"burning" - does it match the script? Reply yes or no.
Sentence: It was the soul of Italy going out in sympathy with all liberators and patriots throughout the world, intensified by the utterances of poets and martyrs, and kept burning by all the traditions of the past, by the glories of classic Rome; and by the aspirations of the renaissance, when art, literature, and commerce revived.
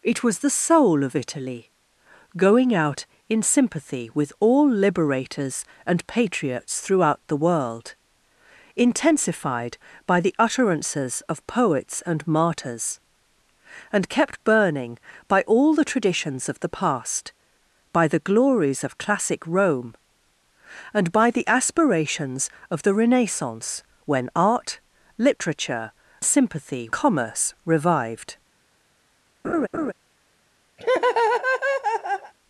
yes